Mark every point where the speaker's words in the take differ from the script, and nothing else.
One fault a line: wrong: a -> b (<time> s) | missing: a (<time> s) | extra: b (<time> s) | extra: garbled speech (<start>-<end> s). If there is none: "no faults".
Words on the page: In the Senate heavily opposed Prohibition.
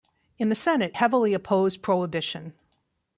no faults